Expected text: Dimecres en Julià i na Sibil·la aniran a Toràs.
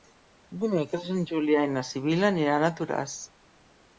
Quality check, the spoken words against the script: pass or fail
pass